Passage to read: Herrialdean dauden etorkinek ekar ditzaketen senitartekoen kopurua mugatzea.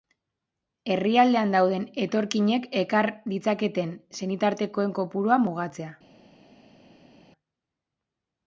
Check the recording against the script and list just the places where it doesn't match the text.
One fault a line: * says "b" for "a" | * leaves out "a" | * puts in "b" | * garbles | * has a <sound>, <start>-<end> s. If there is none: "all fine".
all fine